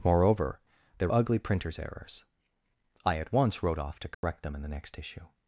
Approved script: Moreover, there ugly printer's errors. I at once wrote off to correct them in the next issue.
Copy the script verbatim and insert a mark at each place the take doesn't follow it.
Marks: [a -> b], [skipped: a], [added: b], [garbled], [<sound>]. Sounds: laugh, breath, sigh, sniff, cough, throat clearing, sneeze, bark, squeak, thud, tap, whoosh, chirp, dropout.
Moreover, there ugly printer's errors. I at once wrote off to correct [dropout] them in the next issue.